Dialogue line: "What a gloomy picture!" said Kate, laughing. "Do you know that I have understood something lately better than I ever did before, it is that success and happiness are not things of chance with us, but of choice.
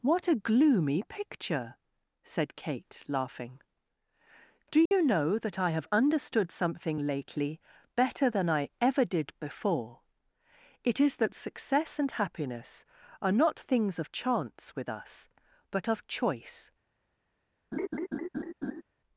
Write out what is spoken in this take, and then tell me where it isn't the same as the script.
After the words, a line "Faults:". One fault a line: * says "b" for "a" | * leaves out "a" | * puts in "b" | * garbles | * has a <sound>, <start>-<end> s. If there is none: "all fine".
"What a gloomy picture!" said Kate, laughing. "Do you know that I have understood something lately better than I ever did before, it is that success and happiness are not things of chance with us, but of choice.
Faults:
* has a dropout, 4.9-4.9 s
* has a laugh, 17.7-18.8 s